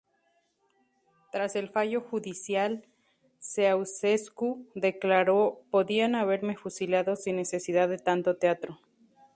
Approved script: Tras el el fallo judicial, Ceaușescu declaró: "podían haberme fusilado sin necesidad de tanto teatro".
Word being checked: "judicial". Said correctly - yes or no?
yes